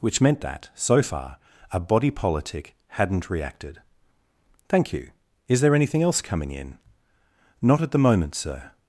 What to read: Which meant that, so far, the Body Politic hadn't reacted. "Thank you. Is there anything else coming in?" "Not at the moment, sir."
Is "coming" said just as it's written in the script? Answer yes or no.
yes